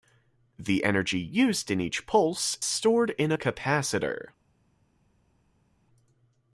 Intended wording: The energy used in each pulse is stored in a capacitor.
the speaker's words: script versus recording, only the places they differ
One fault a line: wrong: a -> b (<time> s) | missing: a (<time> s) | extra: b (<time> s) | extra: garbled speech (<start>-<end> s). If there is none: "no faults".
missing: is (2.6 s)